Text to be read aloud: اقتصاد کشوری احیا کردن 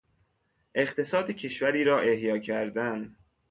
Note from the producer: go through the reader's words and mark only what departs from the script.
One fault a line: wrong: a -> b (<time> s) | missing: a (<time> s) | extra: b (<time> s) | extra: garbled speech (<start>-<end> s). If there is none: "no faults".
extra: را (1.8 s)